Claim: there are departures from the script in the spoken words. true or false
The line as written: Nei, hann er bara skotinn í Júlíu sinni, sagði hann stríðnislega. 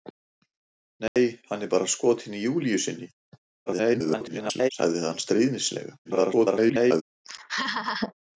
true